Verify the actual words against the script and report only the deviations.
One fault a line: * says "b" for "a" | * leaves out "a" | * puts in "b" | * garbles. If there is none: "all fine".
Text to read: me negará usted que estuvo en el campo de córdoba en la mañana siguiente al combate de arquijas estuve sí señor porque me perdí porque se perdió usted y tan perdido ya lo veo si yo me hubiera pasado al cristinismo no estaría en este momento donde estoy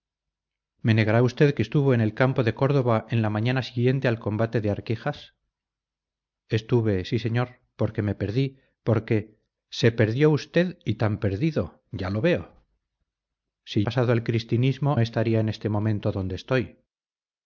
* leaves out "yo me hubiera"
* leaves out "no"